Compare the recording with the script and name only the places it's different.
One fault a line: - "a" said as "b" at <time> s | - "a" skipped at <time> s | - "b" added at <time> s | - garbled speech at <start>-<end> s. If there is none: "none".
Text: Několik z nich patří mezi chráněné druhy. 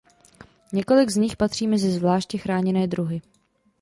- "zvláště" added at 1.9 s